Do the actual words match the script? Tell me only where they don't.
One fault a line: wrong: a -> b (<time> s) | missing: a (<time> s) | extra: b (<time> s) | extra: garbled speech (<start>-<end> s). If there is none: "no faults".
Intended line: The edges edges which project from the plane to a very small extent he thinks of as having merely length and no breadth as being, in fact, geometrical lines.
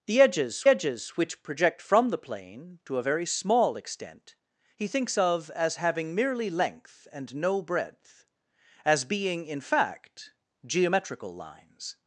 no faults